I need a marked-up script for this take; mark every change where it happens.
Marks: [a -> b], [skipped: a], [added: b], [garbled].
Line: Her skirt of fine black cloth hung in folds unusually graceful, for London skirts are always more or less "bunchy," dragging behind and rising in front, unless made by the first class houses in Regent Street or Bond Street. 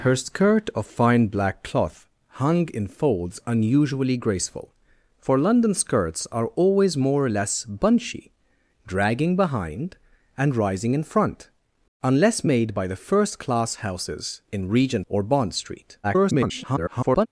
Her skirt of fine black cloth hung in folds unusually graceful, for London skirts are always more or less "bunchy," dragging behind and rising in front, unless made by the first class houses in Regent [skipped: Street] or Bond Street. [garbled]